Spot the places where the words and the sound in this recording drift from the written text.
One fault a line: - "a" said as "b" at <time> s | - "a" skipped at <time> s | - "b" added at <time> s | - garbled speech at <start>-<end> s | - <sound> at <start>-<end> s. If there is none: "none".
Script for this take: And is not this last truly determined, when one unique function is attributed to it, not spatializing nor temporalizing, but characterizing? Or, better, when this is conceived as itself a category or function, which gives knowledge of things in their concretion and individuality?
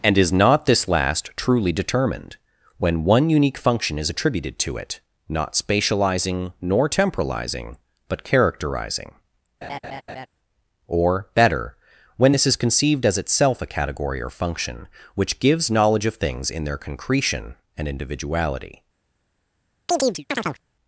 - laugh at 9.6-10.3 s
- chirp at 19.9-20.6 s